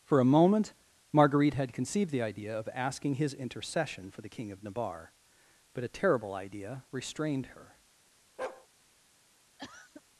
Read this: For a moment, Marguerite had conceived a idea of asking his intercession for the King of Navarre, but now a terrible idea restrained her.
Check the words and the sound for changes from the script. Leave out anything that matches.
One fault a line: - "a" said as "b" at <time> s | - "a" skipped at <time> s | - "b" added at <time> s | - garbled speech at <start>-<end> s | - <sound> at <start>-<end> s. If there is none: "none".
- "a" said as "the" at 2.1 s
- "now" skipped at 5.8 s
- bark at 8.4-8.7 s
- cough at 9.6-10.0 s